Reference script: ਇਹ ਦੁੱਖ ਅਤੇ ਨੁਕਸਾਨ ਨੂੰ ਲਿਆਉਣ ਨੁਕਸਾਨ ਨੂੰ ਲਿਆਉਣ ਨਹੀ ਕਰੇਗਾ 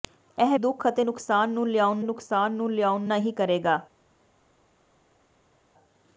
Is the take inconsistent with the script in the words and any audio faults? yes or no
no